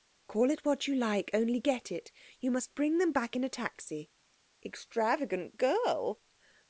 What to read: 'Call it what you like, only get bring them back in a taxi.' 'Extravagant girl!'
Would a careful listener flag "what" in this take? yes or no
no